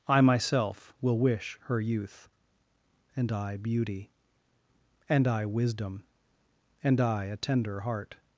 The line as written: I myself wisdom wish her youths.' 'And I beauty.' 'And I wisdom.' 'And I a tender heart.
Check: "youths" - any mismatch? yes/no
yes